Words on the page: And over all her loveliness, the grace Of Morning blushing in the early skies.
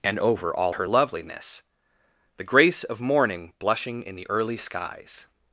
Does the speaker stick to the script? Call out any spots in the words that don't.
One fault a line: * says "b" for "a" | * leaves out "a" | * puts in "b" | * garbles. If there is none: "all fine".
all fine